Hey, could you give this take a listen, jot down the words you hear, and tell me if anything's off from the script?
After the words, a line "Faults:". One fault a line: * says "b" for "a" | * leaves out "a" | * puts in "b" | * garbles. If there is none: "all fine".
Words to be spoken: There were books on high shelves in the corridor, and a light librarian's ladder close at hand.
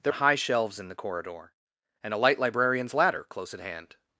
There high shelves in the corridor, and a light librarian's ladder close at hand.
Faults:
* leaves out "were books on"